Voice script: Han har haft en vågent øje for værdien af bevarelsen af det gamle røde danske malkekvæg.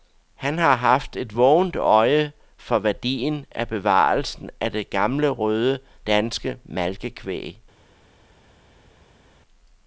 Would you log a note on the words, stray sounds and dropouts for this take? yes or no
yes